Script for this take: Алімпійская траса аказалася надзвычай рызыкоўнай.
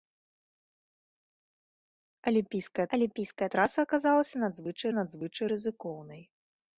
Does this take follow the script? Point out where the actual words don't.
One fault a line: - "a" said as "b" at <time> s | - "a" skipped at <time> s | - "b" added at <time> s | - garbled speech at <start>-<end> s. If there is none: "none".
- "алімпійская" added at 3.0 s
- "надзвычай" added at 5.0 s